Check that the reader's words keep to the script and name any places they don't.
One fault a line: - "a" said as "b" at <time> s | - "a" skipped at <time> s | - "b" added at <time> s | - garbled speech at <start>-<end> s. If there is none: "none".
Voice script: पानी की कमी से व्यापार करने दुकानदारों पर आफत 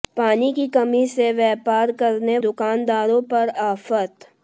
none